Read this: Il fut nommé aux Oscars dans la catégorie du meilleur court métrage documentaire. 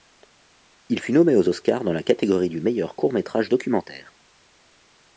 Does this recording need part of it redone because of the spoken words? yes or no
no